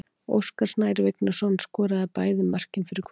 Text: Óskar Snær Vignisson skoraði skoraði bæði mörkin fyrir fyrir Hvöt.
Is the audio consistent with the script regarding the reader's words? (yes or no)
no